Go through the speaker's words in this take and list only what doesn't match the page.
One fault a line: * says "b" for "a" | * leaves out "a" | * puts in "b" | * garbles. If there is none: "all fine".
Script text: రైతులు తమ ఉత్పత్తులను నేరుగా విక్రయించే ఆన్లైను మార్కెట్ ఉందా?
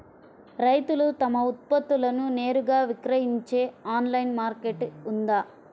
all fine